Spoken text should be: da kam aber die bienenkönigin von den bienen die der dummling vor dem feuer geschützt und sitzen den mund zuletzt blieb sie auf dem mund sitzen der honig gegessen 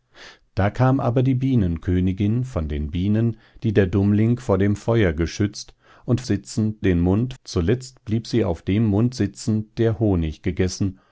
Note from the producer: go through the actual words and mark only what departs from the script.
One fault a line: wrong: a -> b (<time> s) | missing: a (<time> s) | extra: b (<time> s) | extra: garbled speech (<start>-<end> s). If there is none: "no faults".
no faults